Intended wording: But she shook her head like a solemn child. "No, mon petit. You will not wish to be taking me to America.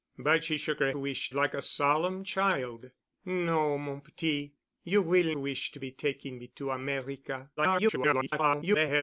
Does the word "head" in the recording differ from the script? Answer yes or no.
yes